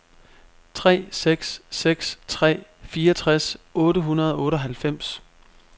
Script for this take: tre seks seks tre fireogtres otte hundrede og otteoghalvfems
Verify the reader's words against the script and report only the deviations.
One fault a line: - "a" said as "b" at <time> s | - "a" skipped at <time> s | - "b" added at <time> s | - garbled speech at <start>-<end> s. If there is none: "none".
none